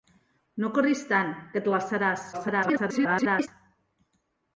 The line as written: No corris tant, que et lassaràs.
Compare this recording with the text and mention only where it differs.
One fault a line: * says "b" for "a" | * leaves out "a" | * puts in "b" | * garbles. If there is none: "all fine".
* garbles